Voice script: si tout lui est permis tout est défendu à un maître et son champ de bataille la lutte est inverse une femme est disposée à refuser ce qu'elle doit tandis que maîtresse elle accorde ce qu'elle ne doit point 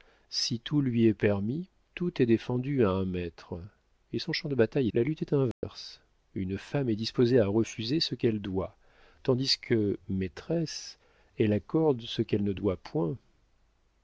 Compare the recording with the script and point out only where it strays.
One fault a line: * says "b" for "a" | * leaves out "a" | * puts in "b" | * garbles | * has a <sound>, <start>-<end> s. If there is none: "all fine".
* has a dropout, 5.5-5.6 s